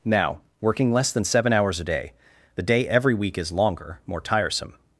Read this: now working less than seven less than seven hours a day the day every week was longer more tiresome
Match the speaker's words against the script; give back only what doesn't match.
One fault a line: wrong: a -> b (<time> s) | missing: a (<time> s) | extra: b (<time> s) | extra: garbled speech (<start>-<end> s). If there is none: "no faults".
missing: less than seven (1.5 s)
wrong: was -> is (3.4 s)